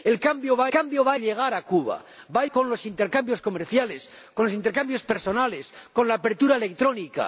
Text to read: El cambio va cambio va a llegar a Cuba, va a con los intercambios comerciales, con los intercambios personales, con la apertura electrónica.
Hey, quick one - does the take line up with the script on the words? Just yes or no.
yes